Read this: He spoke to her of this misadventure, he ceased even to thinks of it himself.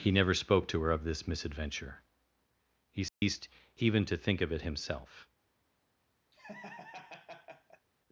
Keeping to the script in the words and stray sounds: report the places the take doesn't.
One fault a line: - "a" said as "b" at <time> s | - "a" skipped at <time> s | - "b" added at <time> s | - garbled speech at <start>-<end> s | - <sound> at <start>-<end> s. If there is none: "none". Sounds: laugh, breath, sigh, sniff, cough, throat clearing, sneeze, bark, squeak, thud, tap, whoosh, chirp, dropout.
- "never" added at 0.1 s
- dropout at 3.1-3.2 s
- "thinks" said as "think" at 4.2 s
- laugh at 6.3-7.9 s